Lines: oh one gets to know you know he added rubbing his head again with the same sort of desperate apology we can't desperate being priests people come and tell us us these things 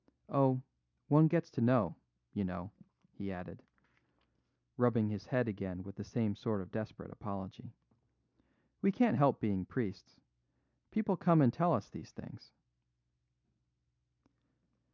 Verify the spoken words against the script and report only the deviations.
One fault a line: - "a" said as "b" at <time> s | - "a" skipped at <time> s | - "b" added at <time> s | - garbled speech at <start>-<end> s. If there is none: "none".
- "desperate" said as "help" at 9.2 s
- "us" skipped at 11.9 s